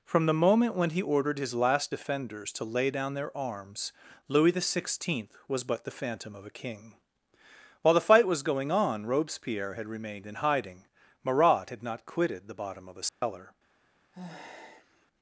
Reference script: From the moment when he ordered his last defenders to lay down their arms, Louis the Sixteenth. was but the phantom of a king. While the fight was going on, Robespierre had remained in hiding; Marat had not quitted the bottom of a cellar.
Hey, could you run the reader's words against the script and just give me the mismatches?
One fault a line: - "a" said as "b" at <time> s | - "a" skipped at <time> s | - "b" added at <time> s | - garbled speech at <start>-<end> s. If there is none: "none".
none